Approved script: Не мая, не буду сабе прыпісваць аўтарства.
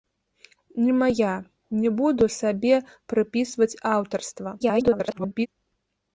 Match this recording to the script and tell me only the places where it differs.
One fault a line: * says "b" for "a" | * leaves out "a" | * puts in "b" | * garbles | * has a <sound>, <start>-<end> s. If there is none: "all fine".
* garbles